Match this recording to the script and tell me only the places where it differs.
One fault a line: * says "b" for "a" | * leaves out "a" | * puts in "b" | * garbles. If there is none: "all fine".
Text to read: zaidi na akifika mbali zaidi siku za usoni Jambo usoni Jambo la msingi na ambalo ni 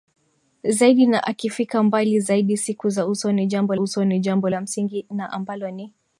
all fine